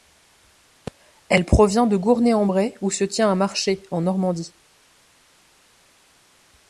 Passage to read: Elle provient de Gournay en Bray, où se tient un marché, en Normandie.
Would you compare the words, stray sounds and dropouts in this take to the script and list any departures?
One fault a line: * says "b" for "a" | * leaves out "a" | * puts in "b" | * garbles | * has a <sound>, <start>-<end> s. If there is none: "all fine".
all fine